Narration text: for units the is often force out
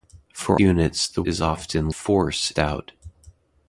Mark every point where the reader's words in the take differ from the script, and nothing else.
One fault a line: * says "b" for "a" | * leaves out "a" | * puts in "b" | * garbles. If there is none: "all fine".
all fine